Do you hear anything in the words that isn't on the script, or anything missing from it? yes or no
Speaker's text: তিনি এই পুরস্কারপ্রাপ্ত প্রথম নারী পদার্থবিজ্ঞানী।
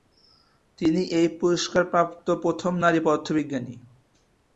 no